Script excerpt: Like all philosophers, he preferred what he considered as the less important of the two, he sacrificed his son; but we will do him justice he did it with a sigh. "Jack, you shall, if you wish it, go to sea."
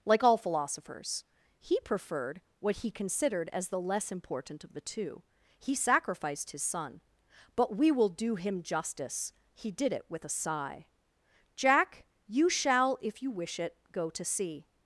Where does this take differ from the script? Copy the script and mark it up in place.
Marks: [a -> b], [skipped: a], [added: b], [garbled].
Like all philosophers, he preferred what he considered as the less important of the two, he sacrificed his son; but we will do him justice he did it with a sigh. "Jack, you shall, if you wish it, go to sea."